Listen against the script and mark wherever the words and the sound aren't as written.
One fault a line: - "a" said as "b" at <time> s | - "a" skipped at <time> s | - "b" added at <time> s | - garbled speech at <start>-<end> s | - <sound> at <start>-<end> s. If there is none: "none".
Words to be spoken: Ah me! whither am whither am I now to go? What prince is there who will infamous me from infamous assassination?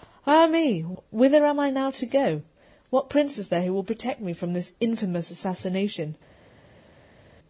- "whither am" skipped at 1.6 s
- "infamous" said as "protect" at 3.8 s
- "this" added at 4.5 s